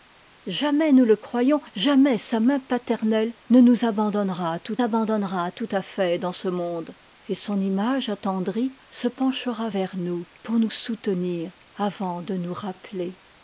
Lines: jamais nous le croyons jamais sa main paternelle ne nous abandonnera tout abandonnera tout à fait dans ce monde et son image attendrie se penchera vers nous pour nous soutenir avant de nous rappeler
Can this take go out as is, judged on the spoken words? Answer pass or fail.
pass